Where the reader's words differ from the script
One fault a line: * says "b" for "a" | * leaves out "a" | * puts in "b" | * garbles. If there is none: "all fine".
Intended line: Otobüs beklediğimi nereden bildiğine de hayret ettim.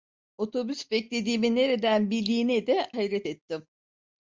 all fine